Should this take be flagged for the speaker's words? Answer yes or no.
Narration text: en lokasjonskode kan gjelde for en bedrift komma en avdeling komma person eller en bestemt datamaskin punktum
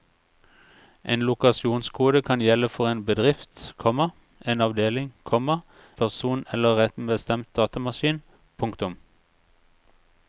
no